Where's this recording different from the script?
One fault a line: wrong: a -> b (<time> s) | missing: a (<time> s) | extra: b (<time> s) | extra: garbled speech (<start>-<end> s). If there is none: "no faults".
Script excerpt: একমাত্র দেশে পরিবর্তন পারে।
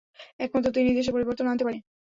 extra: তিনিই (0.8 s)
extra: আনতে (1.5 s)